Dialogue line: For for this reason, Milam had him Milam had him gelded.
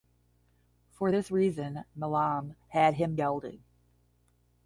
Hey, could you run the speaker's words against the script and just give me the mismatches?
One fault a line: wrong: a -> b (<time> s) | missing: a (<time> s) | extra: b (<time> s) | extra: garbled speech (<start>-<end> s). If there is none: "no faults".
missing: for (1.1 s)
missing: Milam had him (3.2 s)